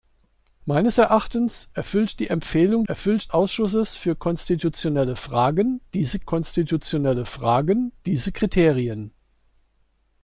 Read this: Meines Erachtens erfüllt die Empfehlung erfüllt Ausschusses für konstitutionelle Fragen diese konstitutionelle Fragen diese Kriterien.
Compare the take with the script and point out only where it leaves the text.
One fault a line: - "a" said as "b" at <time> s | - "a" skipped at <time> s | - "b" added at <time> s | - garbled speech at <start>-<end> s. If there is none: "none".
none